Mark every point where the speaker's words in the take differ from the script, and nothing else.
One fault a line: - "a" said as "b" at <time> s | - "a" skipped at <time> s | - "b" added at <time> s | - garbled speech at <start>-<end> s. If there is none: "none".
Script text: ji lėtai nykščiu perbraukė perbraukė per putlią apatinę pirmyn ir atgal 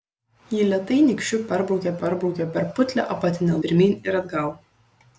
none